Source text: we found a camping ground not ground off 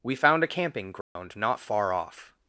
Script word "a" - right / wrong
right